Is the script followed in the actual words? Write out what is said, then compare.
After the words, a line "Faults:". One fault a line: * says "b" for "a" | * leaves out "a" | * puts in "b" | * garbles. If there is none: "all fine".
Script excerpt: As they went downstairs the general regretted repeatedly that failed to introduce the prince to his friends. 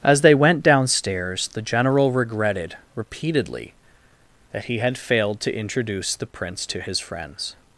As they went downstairs the general regretted repeatedly that he had failed to introduce the prince to his friends.
Faults:
* puts in "he had"